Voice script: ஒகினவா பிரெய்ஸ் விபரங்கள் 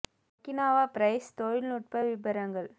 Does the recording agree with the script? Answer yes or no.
no